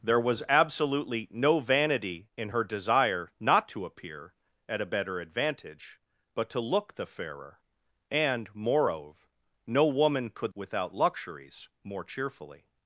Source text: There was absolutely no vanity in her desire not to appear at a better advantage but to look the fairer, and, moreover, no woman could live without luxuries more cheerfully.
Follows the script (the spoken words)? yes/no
no